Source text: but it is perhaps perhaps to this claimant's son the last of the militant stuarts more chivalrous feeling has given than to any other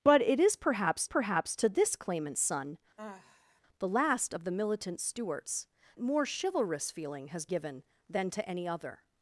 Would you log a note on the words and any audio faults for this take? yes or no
yes